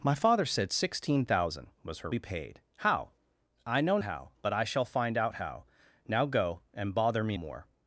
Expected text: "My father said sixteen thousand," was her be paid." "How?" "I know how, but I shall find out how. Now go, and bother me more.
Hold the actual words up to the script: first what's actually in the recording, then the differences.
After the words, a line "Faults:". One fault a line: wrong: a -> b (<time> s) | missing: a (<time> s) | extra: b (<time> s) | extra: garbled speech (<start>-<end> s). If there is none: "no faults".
"My father said sixteen thousand," was her be paid." "How?" "I know how, but I shall find out how. Now go, and bother me more.
Faults:
no faults